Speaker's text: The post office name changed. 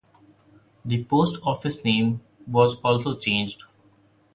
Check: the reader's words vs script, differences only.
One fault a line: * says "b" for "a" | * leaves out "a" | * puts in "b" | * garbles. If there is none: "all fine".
* puts in "was also"